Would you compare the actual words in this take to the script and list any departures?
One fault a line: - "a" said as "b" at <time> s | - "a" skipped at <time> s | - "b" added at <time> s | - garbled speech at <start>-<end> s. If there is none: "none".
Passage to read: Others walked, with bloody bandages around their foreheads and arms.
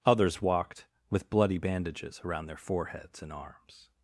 none